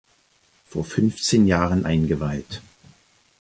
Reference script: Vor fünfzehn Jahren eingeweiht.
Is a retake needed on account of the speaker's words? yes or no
no